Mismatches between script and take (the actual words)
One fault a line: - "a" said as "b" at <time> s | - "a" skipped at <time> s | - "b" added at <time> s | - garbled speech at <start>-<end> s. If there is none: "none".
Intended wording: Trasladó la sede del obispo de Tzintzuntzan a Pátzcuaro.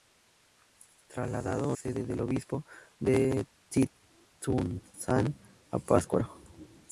- "la" skipped at 1.8 s